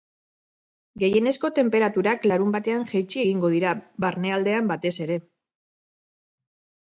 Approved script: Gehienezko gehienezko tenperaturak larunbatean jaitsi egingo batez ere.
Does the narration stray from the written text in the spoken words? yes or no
yes